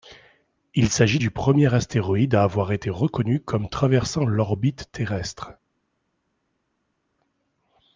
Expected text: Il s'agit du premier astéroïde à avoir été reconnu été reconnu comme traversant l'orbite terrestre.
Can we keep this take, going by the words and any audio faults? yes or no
no